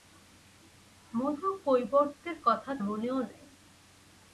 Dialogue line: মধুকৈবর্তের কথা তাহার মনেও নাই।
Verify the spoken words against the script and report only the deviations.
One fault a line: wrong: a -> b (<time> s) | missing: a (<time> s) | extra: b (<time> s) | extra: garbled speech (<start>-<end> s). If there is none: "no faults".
missing: তাহার (2.7 s)